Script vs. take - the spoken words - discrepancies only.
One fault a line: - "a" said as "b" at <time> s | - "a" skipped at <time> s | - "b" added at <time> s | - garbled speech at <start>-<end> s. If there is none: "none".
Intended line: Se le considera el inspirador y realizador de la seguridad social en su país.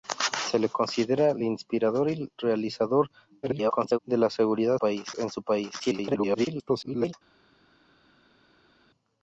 - garbled speech at 3.4-4.0 s
- "social" said as "país" at 4.8 s
- garbled speech at 5.8-7.1 s